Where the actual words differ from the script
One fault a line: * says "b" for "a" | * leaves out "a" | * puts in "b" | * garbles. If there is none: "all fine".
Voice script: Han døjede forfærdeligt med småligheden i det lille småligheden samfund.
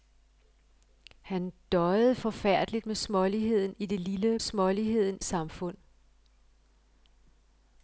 all fine